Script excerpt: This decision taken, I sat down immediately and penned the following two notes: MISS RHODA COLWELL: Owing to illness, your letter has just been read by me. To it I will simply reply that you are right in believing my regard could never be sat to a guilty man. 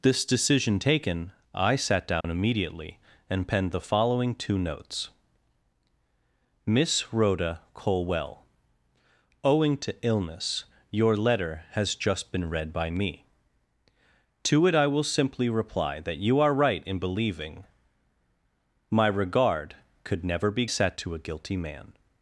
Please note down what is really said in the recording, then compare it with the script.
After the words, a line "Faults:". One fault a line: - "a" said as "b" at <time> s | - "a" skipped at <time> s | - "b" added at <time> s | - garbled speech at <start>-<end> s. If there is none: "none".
This decision taken, I sat down immediately and penned the following two notes: MISS RHODA COLWELL: Owing to illness, your letter has just been read by me. To it I will simply reply that you are right in believing my regard could never be sat to a guilty man.
Faults:
none